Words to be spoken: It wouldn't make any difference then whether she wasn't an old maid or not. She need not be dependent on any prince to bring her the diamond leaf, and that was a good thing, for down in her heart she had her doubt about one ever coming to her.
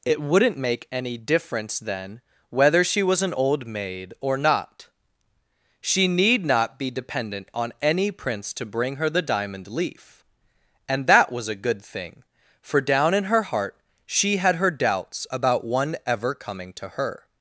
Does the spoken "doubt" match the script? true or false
false